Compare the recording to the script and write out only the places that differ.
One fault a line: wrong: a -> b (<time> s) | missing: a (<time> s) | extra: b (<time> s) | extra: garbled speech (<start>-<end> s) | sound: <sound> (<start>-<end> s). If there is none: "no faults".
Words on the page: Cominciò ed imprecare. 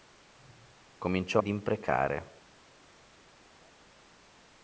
no faults